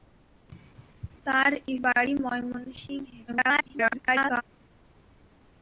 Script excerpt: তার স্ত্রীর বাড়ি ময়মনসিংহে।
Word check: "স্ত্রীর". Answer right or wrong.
wrong